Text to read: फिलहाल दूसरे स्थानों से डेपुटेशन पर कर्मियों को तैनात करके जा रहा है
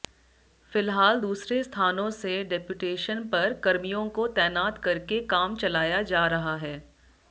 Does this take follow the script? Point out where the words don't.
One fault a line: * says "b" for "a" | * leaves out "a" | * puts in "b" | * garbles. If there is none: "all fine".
* puts in "काम चलाया"